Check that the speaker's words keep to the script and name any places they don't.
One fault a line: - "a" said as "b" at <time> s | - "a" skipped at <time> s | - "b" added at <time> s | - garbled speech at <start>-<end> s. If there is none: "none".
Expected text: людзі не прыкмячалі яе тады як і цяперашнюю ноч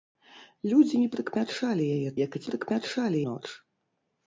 - "тады" skipped at 2.1 s
- "цяперашнюю" said as "прыкмячалі" at 2.5 s